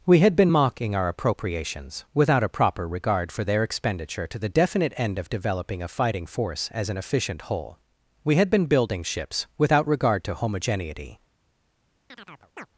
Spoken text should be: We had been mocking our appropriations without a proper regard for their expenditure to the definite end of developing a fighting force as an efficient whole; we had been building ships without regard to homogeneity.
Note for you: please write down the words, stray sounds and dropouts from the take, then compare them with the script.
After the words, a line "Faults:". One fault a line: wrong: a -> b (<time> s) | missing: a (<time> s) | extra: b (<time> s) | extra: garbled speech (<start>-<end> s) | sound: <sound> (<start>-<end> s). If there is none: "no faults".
We had been mocking our appropriations without a proper regard for their expenditure to the definite end of developing a fighting force as an efficient whole; we had been building ships without regard to homogeneity.
Faults:
sound: chirp (12.1-12.7 s)